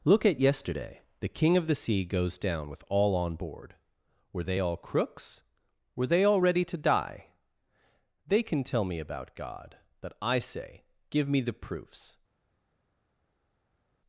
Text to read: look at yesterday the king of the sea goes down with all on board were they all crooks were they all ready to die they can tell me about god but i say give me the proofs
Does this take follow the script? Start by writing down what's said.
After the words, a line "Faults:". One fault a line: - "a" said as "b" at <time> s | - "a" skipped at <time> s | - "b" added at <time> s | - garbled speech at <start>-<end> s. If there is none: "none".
look at yesterday the king of the sea goes down with all on board were they all crooks were they all ready to die they can tell me about god but i say give me the proofs
Faults:
none